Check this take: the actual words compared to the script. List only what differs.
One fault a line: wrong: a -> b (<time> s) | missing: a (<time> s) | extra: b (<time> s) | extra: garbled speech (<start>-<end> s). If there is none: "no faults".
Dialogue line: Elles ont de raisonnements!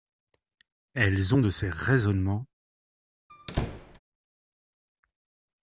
extra: ces (1.5 s)